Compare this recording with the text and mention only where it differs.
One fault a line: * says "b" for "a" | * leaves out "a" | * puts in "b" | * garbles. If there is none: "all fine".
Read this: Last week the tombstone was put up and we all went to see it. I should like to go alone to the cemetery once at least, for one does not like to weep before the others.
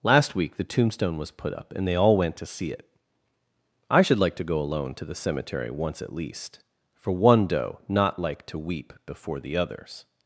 * says "they" for "we"
* says "doe" for "does"